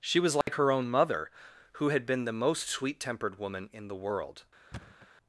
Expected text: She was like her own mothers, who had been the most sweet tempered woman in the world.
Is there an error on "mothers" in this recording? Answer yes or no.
yes